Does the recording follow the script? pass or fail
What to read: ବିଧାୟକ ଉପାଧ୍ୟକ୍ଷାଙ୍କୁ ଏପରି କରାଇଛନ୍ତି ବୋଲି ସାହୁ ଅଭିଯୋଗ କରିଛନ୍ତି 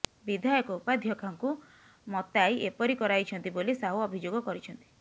fail